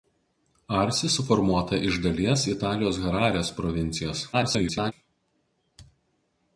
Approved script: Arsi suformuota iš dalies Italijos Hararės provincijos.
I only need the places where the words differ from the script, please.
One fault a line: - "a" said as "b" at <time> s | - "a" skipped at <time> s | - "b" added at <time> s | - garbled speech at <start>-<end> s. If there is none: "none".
- garbled speech at 4.3-4.9 s